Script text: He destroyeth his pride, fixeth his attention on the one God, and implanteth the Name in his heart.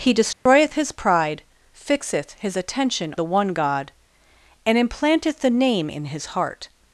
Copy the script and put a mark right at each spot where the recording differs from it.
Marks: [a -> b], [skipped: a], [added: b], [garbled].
He destroyeth his pride, fixeth his attention [skipped: on] the one God, and implanteth the Name in his heart.